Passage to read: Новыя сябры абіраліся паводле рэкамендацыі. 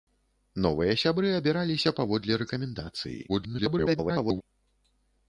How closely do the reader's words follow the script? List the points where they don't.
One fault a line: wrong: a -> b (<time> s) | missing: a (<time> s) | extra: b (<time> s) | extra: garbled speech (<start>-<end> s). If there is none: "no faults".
extra: garbled speech (3.3-4.4 s)